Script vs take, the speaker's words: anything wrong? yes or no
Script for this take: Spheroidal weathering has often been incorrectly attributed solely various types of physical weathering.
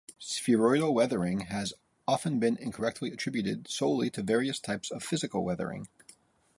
yes